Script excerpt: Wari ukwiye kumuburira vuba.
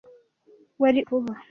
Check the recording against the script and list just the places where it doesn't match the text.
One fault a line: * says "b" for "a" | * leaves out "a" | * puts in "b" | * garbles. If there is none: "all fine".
* leaves out "ukwiye kumuburira"